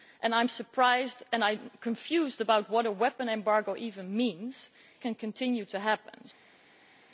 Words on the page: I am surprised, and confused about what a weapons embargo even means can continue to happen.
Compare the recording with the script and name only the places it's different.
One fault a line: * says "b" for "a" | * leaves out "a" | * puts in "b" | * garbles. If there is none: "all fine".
all fine